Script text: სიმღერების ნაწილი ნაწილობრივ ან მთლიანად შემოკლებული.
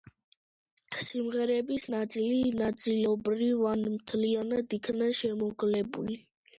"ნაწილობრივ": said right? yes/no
yes